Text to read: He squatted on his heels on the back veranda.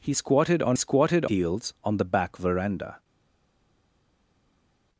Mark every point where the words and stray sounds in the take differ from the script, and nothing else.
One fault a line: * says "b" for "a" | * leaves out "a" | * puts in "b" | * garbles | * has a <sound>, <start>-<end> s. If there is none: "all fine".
* says "squatted" for "his"